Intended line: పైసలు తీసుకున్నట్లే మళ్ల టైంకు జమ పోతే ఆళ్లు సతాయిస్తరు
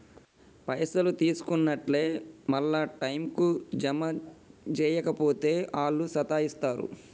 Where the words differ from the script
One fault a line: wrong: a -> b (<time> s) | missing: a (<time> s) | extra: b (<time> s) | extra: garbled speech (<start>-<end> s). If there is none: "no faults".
extra: జేయక (4.7 s)